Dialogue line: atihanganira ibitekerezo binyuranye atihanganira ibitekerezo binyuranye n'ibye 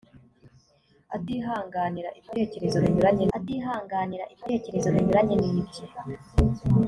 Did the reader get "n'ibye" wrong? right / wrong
right